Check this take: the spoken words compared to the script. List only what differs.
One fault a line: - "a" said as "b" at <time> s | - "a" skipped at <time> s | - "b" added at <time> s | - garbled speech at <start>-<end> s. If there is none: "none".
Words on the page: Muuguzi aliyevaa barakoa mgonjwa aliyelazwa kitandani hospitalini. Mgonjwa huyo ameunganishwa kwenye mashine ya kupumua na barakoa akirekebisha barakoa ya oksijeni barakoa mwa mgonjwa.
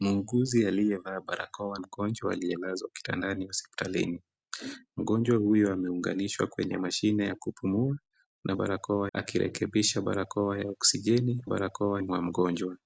none